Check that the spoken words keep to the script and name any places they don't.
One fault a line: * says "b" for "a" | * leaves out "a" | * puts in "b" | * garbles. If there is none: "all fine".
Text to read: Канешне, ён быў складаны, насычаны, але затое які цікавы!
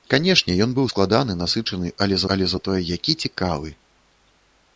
* puts in "але"